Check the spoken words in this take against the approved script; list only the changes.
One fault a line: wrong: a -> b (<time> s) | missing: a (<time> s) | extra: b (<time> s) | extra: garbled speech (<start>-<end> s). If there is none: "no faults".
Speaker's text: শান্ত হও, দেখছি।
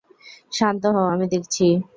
extra: আমি (1.1 s)